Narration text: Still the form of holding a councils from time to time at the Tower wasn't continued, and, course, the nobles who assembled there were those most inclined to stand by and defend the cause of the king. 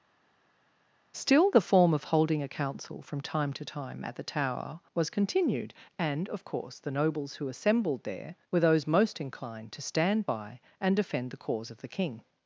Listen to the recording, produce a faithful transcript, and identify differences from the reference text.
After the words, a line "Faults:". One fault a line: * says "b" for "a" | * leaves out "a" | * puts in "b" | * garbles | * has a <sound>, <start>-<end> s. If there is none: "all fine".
Still the form of holding a council from time to time at the Tower was continued, and, of course, the nobles who assembled there were those most inclined to stand by and defend the cause of the king.
Faults:
* says "council" for "councils"
* says "was" for "wasn't"
* puts in "of"